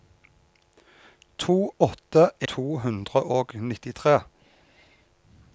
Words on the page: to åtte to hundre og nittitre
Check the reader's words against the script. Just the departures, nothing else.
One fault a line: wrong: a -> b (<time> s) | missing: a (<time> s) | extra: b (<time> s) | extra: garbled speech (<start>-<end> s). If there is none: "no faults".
no faults